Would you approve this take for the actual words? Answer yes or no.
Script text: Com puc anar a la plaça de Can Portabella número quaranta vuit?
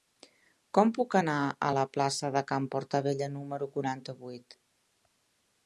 yes